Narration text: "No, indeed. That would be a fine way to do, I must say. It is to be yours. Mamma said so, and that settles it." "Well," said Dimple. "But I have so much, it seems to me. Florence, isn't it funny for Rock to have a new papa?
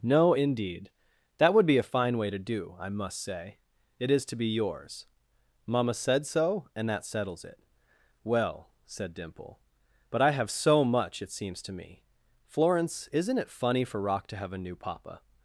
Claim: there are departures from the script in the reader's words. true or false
false